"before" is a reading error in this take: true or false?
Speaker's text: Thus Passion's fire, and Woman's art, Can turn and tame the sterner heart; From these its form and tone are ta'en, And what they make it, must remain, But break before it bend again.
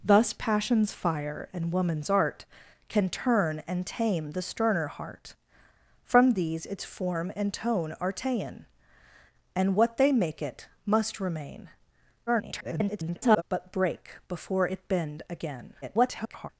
false